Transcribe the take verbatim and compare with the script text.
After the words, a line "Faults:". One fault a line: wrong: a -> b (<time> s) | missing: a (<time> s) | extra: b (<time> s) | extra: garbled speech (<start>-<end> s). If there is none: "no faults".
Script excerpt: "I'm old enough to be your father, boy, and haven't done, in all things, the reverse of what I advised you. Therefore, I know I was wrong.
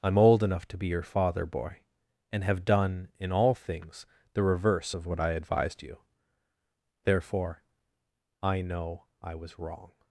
"I'm old enough to be your father, boy, and have done, in all things, the reverse of what I advised you. Therefore, I know I was wrong.
Faults:
wrong: haven't -> have (2.4 s)